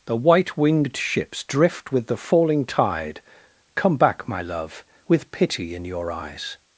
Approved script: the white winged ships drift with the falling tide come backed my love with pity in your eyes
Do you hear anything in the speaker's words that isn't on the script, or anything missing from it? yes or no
yes